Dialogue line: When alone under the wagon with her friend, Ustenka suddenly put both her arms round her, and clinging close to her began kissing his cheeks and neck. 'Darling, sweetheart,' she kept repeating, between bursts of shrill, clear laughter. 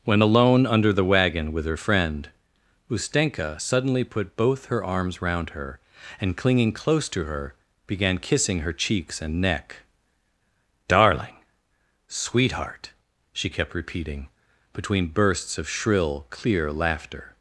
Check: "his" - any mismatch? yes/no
yes